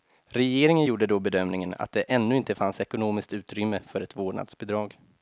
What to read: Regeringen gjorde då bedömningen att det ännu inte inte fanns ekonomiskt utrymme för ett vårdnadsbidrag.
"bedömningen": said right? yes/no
yes